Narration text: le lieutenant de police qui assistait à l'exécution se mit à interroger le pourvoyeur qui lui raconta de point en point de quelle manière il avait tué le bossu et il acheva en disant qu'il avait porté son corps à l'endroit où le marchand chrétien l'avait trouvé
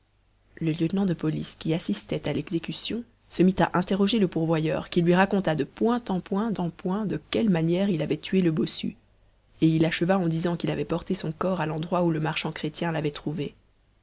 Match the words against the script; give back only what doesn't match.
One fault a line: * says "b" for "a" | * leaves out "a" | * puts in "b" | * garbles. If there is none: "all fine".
* puts in "en point"